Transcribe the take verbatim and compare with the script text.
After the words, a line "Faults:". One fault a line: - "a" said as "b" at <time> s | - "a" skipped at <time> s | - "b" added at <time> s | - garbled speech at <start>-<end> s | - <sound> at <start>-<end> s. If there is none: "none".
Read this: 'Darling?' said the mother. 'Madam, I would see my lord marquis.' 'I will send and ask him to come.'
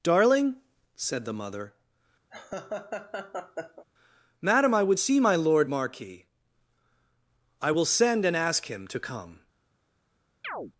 'Darling?' said the mother. 'Madam, I would see my lord marquis.' 'I will send and ask him to come.'
Faults:
- laugh at 2.3-3.8 s
- chirp at 10.4-10.7 s